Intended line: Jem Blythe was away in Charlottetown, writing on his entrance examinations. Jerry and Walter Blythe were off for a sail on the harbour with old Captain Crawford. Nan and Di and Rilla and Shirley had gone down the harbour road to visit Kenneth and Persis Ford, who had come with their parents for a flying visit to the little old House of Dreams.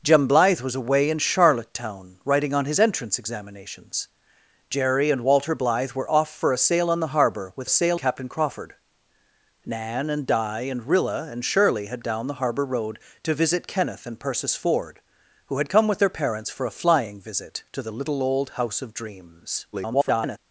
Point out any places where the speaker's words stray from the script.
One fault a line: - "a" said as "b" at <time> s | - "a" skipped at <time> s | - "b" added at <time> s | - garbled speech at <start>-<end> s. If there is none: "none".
- "old" said as "sail" at 7.7 s
- "gone" skipped at 12.0 s
- garbled speech at 19.7-20.4 s